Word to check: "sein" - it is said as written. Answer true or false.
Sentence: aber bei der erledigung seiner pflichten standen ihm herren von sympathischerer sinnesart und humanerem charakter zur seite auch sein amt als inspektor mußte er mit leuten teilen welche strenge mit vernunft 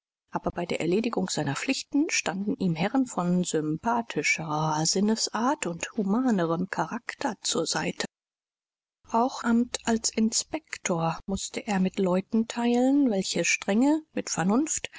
false